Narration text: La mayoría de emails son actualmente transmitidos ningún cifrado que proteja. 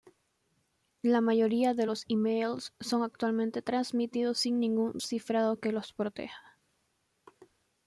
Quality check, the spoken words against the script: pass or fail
fail